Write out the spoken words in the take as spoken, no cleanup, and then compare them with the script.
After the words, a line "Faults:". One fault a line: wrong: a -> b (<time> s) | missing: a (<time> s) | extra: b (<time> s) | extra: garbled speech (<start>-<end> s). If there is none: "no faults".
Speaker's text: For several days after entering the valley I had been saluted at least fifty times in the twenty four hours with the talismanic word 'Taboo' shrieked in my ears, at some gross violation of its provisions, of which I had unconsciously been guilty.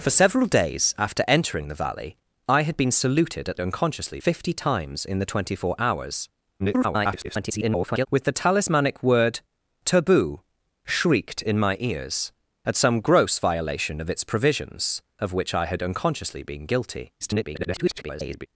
For several days after entering the valley I had been saluted at unconsciously fifty times in the twenty four hours [garbled] with the talismanic word 'Taboo' shrieked in my ears, at some gross violation of its provisions, of which I had unconsciously been guilty. [garbled]
Faults:
wrong: least -> unconsciously (3.6 s)
extra: garbled speech (6.6-8.1 s)
extra: garbled speech (17.2-18.5 s)